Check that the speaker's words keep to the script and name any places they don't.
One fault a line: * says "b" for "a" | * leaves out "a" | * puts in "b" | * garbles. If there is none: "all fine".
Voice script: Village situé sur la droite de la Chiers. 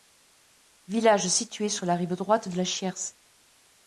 * puts in "rive"